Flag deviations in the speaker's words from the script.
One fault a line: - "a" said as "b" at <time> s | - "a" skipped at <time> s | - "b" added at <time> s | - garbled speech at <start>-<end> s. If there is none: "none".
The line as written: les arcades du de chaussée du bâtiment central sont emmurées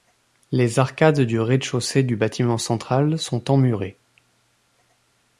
- "rez" added at 1.4 s